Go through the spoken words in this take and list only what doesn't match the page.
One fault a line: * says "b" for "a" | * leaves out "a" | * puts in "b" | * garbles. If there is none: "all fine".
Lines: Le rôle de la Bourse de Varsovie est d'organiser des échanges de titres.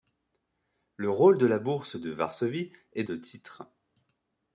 * leaves out "d'organiser des échanges"